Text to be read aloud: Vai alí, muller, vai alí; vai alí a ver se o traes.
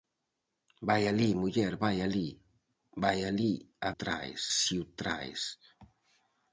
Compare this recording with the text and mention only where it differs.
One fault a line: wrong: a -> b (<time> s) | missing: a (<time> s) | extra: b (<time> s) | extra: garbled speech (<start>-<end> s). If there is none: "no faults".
wrong: ver -> traes (4.0 s)